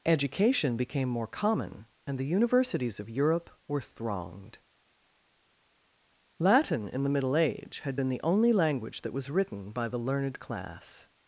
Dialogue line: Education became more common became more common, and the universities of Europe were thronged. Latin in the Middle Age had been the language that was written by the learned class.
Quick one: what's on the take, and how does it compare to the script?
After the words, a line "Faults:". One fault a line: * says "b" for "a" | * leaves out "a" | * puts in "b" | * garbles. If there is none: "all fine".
Education became more common, and the universities of Europe were thronged. Latin in the Middle Age had been the only language that was written by the learned class.
Faults:
* leaves out "became more common"
* puts in "only"